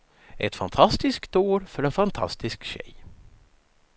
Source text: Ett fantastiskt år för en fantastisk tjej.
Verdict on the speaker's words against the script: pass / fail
pass